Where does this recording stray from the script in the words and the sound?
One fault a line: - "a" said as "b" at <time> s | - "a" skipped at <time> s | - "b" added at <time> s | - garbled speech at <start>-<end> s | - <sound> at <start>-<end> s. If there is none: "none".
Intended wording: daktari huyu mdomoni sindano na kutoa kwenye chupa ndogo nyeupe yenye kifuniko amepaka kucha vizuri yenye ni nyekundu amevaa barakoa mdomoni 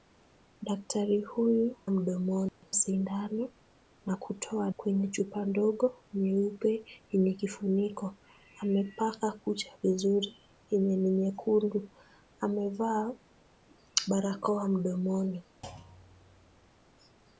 - dropout at 2.5-2.6 s
- thud at 15.6-16.7 s